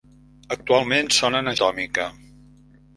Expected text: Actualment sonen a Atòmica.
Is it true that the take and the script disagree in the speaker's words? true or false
false